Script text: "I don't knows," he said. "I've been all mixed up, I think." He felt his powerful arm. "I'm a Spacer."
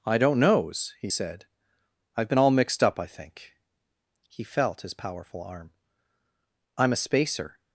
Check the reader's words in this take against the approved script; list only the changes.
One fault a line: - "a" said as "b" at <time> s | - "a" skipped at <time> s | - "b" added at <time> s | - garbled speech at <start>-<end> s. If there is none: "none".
none